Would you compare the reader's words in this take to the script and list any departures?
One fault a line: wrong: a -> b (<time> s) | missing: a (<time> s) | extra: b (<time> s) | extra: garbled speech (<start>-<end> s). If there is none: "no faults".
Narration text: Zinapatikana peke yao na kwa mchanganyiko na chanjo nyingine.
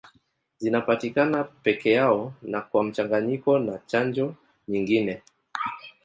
no faults